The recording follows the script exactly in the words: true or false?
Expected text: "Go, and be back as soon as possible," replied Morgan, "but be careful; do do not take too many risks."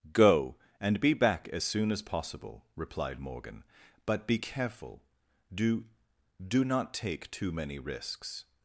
true